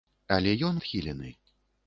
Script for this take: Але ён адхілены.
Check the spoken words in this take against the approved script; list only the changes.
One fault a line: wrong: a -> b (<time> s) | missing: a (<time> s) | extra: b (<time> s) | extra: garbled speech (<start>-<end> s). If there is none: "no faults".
no faults